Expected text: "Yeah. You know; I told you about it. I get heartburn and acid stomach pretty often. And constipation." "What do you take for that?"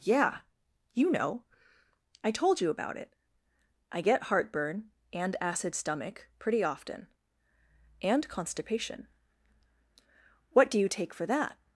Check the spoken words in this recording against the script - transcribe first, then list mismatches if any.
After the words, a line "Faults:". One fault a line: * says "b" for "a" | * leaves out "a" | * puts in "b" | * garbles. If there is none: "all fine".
"Yeah. You know; I told you about it. I get heartburn and acid stomach pretty often. And constipation." "What do you take for that?"
Faults:
all fine